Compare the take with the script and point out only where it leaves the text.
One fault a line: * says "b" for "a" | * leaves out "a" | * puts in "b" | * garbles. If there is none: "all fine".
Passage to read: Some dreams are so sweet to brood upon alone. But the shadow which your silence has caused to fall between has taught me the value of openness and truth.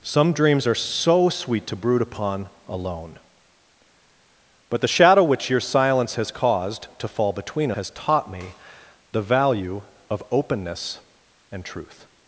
all fine